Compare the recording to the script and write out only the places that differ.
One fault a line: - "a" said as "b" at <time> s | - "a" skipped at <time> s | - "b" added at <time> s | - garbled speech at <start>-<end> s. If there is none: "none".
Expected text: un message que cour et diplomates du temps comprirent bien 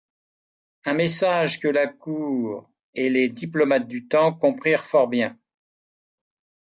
- "la" added at 1.7 s
- "les" added at 3.1 s
- "fort" added at 4.8 s